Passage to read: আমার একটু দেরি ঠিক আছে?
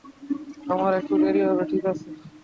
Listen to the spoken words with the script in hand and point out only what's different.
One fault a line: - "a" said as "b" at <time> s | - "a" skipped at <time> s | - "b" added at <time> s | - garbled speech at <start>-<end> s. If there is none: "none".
- "হবে" added at 1.5 s